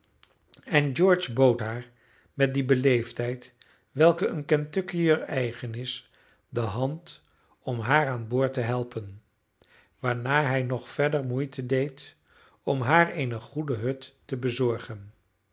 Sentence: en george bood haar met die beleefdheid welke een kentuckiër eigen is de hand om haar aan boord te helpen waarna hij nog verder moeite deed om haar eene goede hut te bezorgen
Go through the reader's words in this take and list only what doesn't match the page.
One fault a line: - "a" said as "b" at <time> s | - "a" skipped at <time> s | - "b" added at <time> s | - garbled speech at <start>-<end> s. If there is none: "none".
none